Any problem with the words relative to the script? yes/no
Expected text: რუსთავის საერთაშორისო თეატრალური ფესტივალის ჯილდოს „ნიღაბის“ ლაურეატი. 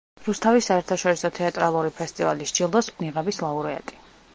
no